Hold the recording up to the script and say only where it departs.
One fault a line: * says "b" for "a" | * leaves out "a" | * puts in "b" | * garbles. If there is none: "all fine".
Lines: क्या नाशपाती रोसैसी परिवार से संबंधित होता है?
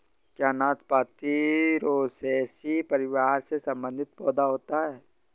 * puts in "पौधा"